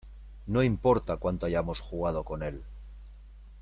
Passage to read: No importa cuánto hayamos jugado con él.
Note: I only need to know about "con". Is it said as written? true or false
true